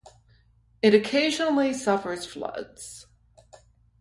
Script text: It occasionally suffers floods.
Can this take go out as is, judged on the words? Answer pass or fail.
pass